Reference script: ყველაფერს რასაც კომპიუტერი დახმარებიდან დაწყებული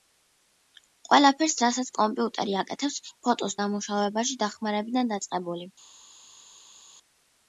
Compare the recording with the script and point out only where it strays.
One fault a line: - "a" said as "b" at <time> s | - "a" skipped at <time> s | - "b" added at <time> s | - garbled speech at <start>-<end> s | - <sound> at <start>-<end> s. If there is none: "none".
- "აკეთებს ფოტოს დამუშავებაში" added at 2.6 s